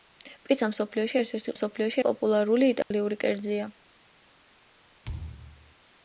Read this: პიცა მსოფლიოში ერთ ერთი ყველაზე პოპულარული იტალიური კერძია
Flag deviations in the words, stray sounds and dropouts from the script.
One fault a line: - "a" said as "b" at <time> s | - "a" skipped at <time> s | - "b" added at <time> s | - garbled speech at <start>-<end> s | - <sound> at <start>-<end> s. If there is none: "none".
- "ყველაზე" said as "მსოფლიოში" at 1.5 s
- dropout at 2.8-2.9 s
- thud at 5.0-5.8 s